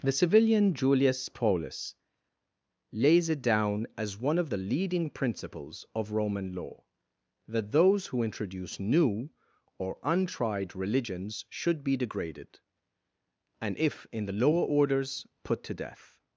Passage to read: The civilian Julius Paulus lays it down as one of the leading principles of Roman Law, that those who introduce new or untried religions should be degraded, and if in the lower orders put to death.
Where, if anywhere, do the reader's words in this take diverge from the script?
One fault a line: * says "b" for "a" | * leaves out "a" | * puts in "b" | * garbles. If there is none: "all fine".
all fine